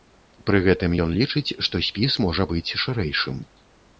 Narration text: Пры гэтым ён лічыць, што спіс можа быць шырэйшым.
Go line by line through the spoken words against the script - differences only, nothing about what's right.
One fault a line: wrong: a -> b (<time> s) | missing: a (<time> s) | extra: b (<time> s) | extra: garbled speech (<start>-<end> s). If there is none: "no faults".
no faults